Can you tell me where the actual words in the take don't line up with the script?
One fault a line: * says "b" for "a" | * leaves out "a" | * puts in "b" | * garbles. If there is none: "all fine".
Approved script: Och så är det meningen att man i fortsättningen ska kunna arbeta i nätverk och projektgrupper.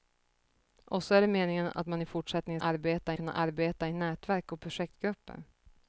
* says "arbeta" for "ska"